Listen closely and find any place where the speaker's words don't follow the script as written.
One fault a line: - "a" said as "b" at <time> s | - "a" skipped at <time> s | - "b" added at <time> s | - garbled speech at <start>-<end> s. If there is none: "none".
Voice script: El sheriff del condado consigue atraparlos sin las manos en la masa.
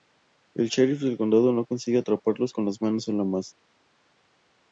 - "no" added at 1.5 s
- "sin" said as "con" at 2.5 s